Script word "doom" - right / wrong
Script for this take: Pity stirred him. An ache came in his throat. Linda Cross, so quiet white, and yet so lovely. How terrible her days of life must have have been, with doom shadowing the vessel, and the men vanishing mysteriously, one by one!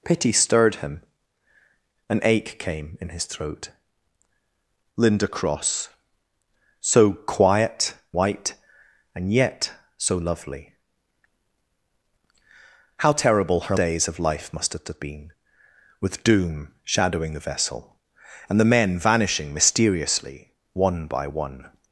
right